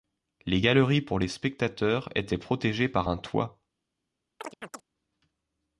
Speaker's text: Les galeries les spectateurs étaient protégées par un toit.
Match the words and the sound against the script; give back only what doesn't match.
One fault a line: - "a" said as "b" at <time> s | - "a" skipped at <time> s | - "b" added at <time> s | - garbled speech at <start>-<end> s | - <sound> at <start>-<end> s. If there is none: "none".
- "pour" added at 1.0 s
- chirp at 4.4-4.8 s